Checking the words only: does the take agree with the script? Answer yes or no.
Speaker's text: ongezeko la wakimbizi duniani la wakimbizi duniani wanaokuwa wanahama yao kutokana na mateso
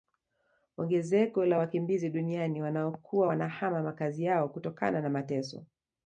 no